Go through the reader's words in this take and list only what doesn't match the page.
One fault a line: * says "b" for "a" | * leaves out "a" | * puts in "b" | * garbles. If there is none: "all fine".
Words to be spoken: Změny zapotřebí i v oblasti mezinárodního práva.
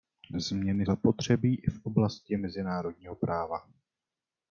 all fine